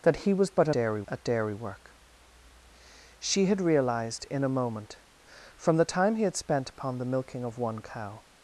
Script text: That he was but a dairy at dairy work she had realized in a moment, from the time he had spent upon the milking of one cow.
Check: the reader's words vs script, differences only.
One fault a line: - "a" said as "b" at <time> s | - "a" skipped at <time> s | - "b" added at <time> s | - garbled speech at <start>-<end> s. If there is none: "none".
none